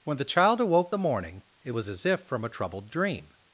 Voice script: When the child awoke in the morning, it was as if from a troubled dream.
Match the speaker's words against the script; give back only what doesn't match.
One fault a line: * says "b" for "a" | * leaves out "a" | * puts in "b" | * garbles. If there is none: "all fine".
* leaves out "in"